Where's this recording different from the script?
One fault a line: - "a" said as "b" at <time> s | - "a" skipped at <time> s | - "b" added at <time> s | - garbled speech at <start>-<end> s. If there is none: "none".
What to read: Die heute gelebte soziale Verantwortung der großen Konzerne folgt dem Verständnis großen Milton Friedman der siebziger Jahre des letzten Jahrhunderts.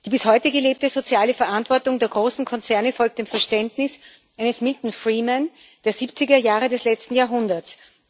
- "bis" added at 0.1 s
- "großen" said as "eines" at 4.4 s